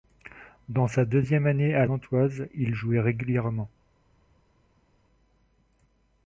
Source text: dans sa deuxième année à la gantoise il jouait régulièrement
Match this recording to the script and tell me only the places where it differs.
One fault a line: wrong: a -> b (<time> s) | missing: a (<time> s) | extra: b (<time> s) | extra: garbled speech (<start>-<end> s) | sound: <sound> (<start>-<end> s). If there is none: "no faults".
missing: la (1.9 s)